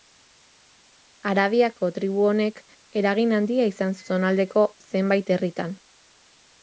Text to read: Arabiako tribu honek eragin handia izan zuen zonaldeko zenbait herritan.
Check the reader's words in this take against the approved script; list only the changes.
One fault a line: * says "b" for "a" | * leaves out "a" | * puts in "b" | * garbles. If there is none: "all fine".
* leaves out "zuen"